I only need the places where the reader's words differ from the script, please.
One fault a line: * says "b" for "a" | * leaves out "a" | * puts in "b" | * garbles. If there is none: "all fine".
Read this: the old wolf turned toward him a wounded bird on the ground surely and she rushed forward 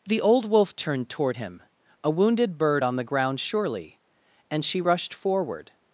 all fine